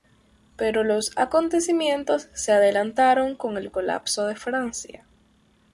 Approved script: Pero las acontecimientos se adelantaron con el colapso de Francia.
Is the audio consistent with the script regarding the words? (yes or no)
no